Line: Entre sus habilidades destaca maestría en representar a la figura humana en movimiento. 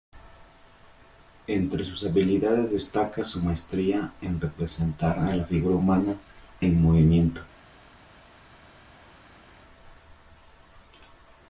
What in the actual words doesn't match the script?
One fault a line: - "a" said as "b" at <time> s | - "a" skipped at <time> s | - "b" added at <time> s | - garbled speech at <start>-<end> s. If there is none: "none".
- "su" added at 3.2 s